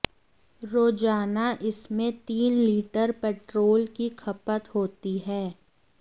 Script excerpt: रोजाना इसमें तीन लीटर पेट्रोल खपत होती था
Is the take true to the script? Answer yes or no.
no